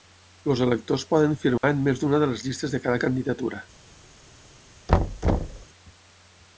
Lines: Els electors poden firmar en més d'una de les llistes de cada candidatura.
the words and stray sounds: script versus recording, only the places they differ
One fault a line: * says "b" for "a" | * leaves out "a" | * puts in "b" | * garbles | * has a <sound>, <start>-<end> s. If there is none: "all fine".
* has a dropout, 1.6-1.6 s
* has a thud, 4.9-5.7 s